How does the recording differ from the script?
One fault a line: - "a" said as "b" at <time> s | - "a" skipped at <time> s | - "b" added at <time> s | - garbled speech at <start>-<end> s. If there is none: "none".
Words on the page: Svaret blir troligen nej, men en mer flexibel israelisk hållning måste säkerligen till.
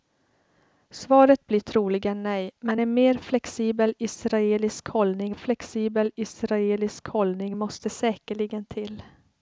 - "flexibel israelisk hållning" added at 5.3 s